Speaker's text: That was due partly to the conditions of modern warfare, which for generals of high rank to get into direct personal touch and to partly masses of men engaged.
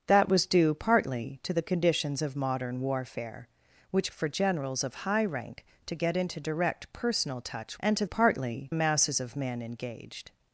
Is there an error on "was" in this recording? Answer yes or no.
no